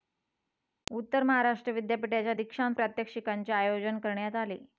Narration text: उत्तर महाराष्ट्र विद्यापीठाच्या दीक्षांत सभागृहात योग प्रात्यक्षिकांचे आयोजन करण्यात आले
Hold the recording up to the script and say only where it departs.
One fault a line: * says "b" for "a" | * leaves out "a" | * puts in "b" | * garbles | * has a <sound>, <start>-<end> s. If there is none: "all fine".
* leaves out "सभागृहात योग"